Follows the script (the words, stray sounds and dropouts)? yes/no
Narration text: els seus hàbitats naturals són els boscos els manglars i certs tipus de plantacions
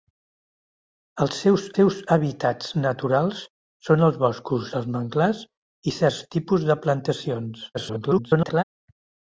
no